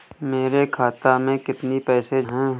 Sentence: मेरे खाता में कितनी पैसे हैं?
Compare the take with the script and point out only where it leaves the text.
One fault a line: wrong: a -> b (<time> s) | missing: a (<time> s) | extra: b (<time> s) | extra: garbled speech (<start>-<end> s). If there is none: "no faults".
no faults